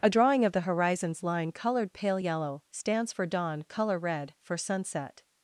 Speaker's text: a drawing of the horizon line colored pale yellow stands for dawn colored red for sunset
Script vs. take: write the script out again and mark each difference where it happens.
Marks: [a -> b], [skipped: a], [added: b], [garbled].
a drawing of the [horizon -> horizons] line colored pale yellow stands for dawn [colored -> color] red for sunset